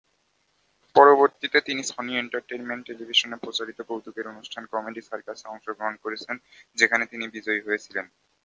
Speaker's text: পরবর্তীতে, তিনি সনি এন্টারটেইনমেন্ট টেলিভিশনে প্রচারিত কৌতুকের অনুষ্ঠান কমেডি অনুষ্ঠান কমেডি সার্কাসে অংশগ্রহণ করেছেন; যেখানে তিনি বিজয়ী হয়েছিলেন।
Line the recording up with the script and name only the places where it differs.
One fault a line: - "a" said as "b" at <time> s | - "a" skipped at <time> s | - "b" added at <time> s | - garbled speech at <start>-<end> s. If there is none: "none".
- "অনুষ্ঠান কমেডি" skipped at 5.0 s